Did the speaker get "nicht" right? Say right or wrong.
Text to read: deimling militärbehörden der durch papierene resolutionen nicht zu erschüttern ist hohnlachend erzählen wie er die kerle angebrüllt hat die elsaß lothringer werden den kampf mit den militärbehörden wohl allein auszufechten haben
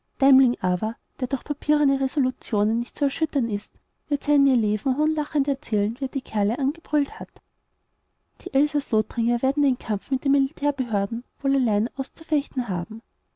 right